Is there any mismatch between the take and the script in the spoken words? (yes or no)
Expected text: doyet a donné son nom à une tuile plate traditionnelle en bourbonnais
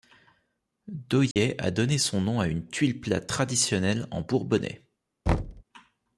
no